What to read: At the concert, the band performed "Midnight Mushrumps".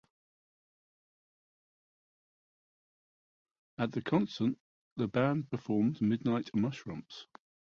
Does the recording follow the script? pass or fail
pass